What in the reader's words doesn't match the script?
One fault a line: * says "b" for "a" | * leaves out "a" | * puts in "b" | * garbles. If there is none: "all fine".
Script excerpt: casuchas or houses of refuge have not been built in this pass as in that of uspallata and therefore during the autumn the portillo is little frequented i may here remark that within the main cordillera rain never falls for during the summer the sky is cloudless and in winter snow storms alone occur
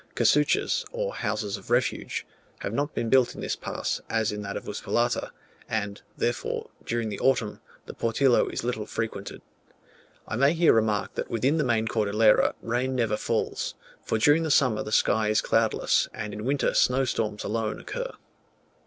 all fine